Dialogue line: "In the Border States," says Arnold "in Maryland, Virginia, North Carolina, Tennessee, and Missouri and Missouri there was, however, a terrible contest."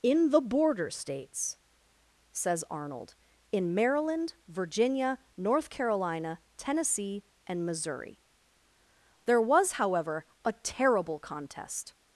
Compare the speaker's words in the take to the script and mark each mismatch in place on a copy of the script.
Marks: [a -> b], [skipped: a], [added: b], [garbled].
"In the Border States," says Arnold "in Maryland, Virginia, North Carolina, Tennessee, and Missouri [skipped: and Missouri] there was, however, a terrible contest."